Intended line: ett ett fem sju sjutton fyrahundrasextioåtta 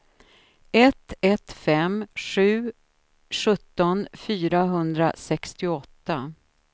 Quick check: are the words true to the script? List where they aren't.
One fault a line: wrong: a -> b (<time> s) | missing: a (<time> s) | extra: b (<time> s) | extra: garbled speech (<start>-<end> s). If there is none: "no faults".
no faults